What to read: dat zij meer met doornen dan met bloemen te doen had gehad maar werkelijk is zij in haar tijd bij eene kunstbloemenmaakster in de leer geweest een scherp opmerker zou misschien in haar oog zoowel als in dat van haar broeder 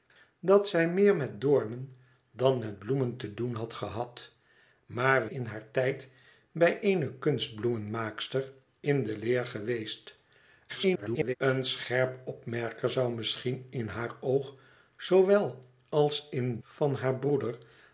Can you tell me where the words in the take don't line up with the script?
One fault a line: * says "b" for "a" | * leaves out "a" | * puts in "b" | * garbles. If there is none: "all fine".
* leaves out "werkelijk is zij"
* garbles
* leaves out "dat"